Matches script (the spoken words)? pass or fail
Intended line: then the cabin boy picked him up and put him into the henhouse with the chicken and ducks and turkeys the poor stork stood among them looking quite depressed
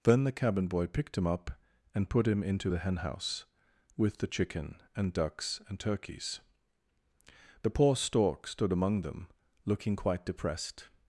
pass